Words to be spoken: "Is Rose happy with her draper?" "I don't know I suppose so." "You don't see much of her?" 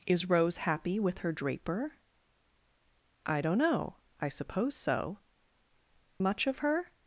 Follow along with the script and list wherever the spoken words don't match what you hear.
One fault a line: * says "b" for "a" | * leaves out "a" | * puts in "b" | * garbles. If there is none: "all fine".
* leaves out "You don't see"